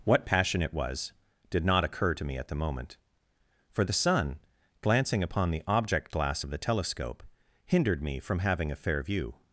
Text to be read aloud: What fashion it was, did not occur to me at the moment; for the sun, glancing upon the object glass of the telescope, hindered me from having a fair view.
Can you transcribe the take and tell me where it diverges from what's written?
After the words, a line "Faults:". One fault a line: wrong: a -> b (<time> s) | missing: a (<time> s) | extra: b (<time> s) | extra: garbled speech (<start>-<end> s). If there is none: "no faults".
What passion it was, did not occur to me at the moment; for the sun, glancing upon the object glass of the telescope, hindered me from having a fair view.
Faults:
wrong: fashion -> passion (0.2 s)